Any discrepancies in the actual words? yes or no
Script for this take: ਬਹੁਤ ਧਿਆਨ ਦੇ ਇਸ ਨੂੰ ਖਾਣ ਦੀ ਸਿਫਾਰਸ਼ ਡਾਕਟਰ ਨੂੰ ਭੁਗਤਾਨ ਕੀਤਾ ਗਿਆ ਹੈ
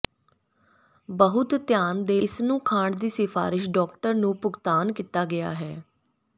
no